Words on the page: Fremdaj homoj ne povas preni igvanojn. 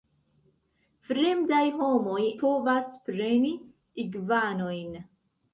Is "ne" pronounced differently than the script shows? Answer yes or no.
yes